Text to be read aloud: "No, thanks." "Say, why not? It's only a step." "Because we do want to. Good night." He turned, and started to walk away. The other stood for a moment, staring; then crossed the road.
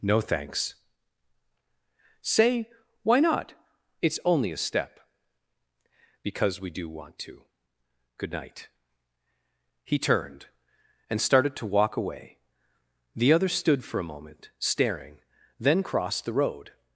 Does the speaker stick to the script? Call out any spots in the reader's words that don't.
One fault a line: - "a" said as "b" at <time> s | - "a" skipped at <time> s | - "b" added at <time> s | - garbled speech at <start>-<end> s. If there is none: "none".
none